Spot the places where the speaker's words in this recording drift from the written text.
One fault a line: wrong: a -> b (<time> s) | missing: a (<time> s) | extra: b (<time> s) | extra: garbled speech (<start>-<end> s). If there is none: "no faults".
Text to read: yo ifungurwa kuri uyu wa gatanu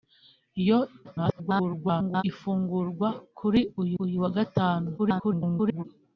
extra: garbled speech (1.0-2.2 s)
extra: uyu (4.0 s)
extra: garbled speech (5.0-5.8 s)